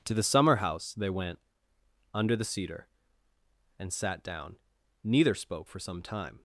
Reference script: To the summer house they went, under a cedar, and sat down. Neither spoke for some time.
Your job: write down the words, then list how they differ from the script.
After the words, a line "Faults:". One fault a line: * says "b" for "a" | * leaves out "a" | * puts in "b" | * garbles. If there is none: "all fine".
To the summer house they went, under the cedar, and sat down. Neither spoke for some time.
Faults:
* says "the" for "a"